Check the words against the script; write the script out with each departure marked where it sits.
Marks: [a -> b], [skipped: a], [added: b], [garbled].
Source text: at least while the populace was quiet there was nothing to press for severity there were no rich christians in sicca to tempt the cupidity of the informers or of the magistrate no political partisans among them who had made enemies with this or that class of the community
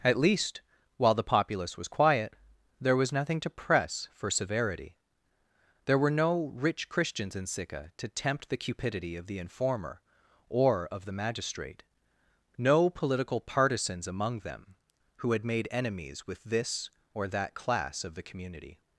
at least while the populace was quiet there was nothing to press for severity there were no rich christians in sicca to tempt the cupidity of the [informers -> informer] or of the magistrate no political partisans among them who had made enemies with this or that class of the community